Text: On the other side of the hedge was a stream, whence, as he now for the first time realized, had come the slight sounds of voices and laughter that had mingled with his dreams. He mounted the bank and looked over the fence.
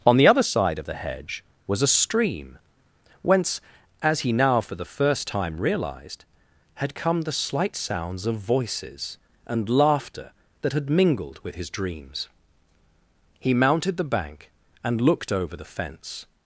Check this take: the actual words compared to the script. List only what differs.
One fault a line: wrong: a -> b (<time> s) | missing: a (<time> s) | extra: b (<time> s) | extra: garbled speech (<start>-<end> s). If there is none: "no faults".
no faults